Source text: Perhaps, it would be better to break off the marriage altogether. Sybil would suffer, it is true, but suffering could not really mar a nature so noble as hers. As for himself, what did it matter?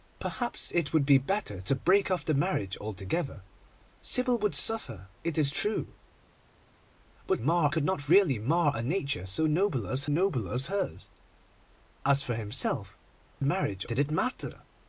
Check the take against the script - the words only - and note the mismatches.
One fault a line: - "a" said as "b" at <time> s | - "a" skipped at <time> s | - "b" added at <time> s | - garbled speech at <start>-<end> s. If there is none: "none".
- "suffering" said as "mar" at 7.4 s
- "noble as" added at 10.0 s
- "what" said as "marriage" at 13.4 s